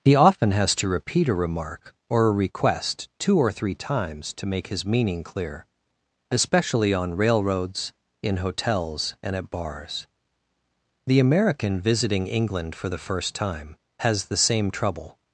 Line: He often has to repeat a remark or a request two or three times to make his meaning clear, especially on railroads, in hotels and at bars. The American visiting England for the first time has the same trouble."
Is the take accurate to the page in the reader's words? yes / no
yes